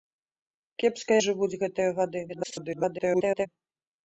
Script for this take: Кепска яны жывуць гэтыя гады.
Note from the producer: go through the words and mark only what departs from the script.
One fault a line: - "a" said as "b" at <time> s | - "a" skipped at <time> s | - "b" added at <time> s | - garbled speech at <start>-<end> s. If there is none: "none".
- "яны" skipped at 1.1 s
- garbled speech at 2.3-3.5 s